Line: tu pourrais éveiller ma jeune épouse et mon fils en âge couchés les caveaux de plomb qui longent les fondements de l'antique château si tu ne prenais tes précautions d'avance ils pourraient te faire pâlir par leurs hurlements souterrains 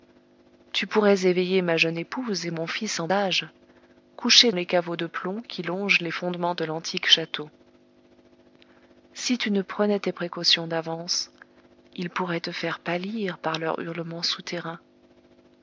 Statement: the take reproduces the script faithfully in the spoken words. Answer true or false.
true